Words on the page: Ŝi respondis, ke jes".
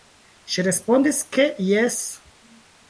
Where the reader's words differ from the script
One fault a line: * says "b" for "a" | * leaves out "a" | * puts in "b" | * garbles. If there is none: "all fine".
all fine